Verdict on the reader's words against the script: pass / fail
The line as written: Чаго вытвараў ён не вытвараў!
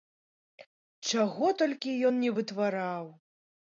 fail